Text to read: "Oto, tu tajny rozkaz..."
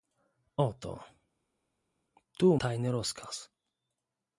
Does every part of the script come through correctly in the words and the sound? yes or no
yes